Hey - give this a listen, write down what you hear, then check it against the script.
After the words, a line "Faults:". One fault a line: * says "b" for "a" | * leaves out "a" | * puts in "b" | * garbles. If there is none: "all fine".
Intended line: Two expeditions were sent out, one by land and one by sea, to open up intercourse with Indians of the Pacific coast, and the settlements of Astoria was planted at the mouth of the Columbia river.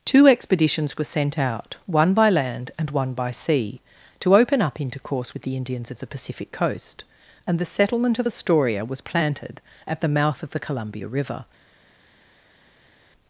Two expeditions were sent out, one by land and one by sea, to open up intercourse with the Indians of the Pacific coast, and the settlement of Astoria was planted at the mouth of the Columbia river.
Faults:
* puts in "the"
* says "settlement" for "settlements"